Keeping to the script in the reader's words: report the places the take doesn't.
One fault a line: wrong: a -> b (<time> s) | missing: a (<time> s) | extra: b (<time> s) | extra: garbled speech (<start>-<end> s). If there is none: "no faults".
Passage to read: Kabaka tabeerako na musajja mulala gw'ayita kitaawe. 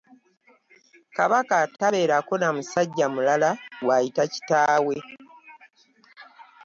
no faults